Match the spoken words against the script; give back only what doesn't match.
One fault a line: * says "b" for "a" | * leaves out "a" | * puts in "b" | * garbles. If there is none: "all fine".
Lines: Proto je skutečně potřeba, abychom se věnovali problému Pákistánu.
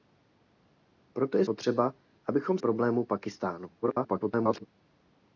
* leaves out "skutečně"
* leaves out "se věnovali"
* garbles